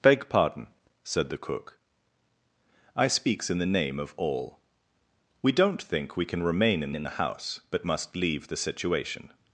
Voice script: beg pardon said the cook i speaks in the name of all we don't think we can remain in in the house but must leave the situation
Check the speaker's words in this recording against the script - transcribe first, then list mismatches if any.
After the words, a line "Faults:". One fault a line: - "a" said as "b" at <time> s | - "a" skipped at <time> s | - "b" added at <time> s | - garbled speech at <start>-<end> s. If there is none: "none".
beg pardon said the cook i speaks in the name of all we don't think we can remain in in the house but must leave the situation
Faults:
none